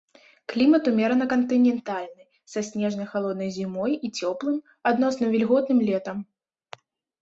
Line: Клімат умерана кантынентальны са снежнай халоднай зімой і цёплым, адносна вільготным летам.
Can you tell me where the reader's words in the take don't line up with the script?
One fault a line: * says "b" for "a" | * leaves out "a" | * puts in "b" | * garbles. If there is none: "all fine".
all fine